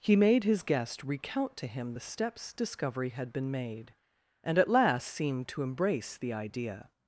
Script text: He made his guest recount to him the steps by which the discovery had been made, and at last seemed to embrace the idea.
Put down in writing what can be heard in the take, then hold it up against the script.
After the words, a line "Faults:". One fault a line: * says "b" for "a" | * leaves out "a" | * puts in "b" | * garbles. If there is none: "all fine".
He made his guest recount to him the steps discovery had been made, and at last seemed to embrace the idea.
Faults:
* leaves out "by which the"